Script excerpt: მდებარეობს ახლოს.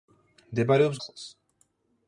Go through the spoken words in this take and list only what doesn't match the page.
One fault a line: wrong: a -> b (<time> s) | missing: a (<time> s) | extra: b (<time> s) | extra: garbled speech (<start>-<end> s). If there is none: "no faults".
no faults